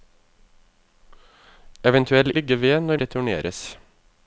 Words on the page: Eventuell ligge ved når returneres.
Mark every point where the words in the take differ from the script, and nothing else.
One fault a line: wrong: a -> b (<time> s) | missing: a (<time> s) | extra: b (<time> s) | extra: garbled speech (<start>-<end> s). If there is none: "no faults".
no faults